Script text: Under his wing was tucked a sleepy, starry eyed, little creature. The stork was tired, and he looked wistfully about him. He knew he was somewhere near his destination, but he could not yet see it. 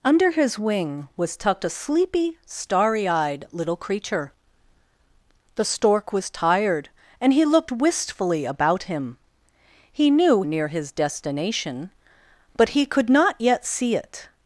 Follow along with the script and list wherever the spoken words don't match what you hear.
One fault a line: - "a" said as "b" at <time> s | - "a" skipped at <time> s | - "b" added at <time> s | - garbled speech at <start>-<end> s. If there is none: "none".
- "he was somewhere" skipped at 10.4 s